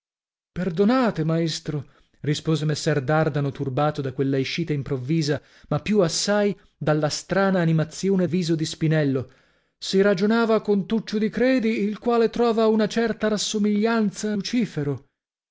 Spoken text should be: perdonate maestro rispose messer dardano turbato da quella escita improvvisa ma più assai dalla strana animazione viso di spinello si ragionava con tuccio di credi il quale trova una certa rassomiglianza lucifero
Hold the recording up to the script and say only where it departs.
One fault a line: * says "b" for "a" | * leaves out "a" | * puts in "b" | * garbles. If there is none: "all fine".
all fine